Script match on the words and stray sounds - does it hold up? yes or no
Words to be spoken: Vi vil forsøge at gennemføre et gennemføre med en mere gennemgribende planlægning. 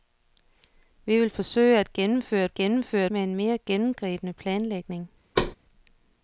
no